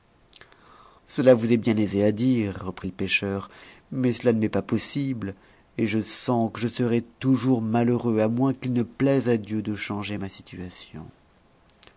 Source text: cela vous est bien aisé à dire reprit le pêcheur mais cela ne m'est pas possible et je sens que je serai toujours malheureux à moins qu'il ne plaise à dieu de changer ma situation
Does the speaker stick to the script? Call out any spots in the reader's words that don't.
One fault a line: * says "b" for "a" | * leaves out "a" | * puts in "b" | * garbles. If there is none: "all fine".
all fine